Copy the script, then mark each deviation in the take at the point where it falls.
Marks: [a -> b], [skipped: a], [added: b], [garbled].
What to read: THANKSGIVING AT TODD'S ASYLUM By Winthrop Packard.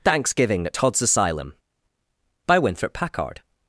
THANKSGIVING AT TODD'S ASYLUM By Winthrop Packard.